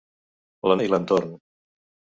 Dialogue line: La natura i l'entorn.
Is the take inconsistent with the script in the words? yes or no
yes